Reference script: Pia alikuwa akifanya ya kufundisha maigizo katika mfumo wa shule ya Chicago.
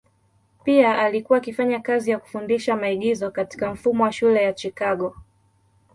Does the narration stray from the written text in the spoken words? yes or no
yes